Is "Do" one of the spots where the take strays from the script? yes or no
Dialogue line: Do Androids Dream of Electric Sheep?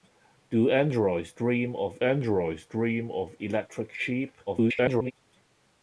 no